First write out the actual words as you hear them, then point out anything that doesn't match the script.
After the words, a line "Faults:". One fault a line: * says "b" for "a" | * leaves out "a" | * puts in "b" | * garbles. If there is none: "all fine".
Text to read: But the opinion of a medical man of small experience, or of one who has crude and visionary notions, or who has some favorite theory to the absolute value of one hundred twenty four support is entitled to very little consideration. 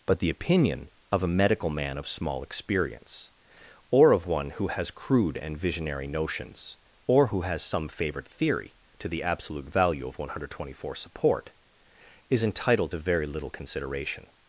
But the opinion of a medical man of small experience, or of one who has crude and visionary notions, or who has some favorite theory to the absolute value of one hundred twenty four support is entitled to very little consideration.
Faults:
all fine